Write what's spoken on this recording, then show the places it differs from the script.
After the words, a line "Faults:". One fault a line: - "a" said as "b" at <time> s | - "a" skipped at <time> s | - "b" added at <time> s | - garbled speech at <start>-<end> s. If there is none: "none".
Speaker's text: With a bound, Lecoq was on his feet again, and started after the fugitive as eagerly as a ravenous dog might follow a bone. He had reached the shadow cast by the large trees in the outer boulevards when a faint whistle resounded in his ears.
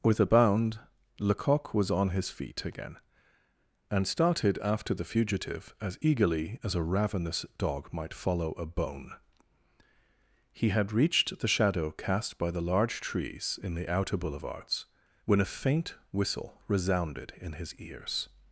With a bound, Lecoq was on his feet again, and started after the fugitive as eagerly as a ravenous dog might follow a bone. He had reached the shadow cast by the large trees in the outer boulevards when a faint whistle resounded in his ears.
Faults:
none